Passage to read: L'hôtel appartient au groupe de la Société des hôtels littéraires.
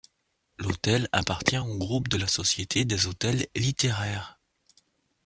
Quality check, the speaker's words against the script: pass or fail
pass